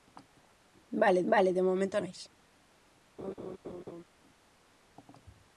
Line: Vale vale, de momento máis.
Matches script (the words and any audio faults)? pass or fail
fail